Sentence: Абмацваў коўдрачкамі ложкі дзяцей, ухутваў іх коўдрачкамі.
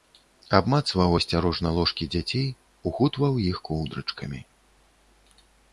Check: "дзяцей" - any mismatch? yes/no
no